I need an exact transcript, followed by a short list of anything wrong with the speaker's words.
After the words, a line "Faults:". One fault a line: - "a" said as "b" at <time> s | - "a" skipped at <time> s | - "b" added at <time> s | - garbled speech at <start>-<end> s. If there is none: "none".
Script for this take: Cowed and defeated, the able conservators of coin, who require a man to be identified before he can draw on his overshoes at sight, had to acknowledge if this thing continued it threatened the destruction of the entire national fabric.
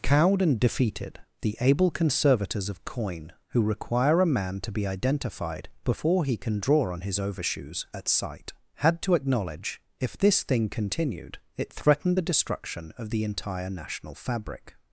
Cowed and defeated, the able conservators of coin, who require a man to be identified before he can draw on his overshoes at sight, had to acknowledge if this thing continued it threatened the destruction of the entire national fabric.
Faults:
none